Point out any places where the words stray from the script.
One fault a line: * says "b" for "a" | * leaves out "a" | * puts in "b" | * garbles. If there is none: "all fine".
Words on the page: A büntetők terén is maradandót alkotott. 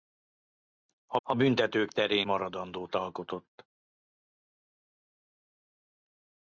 * puts in "a"
* leaves out "is"